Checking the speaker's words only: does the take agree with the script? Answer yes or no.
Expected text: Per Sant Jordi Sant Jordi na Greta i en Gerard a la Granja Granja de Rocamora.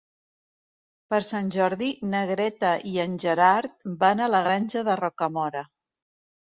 no